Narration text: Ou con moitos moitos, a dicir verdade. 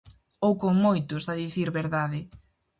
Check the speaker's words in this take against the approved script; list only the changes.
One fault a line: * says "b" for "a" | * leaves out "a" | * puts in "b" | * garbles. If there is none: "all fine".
* leaves out "moitos"